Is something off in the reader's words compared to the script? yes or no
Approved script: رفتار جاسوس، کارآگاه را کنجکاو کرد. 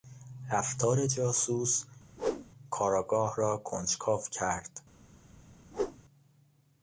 no